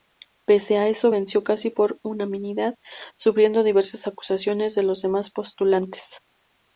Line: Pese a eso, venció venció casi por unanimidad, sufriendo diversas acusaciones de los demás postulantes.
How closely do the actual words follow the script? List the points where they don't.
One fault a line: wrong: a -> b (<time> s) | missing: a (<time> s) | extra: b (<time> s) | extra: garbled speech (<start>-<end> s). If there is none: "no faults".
missing: venció (1.4 s)